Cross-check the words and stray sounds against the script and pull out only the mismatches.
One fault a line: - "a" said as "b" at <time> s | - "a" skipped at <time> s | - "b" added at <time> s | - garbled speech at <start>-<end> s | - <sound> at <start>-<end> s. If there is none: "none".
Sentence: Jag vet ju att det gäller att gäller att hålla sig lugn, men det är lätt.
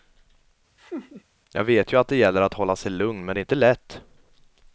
- laugh at 0.8-1.2 s
- "gäller att" skipped at 2.5 s
- "inte" added at 3.4 s